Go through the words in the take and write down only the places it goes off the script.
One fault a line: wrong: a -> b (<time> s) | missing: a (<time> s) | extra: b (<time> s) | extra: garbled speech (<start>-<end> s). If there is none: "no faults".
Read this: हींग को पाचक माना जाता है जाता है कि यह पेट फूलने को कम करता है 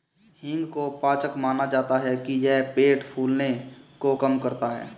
missing: जाता है (2.1 s)